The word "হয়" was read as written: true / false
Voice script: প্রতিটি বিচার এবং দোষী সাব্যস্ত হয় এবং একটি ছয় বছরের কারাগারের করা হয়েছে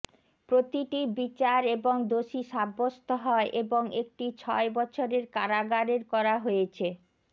true